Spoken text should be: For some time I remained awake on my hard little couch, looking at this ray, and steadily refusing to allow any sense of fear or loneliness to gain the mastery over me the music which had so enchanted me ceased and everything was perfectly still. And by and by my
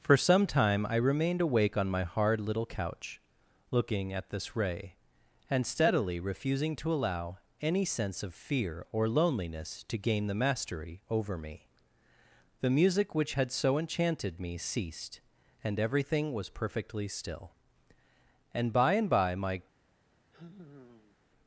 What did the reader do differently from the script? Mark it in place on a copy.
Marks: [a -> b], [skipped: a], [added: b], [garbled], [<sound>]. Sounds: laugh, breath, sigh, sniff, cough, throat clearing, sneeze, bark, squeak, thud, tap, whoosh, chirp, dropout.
For some time I remained awake on my hard little couch, looking at this ray, and steadily refusing to allow any sense of fear or loneliness to gain the mastery over me the music which had so enchanted me ceased and everything was perfectly still. And by and by my [sigh]